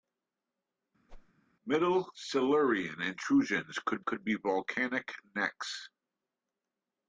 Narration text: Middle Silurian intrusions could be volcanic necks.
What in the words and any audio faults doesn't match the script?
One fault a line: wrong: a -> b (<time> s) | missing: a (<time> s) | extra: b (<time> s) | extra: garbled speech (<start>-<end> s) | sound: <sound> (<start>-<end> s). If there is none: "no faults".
sound: whoosh (1.1-1.3 s)
extra: could (4.0 s)